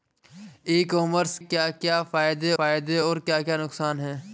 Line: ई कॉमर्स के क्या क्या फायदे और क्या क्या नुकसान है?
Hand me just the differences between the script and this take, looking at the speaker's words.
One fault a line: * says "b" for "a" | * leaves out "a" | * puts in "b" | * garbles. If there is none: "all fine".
* says "क्या" for "के"
* says "फायदे" for "क्या"